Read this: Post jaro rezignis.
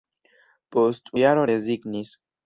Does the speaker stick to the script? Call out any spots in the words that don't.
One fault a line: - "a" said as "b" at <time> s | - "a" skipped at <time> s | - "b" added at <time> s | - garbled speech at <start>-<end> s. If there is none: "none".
none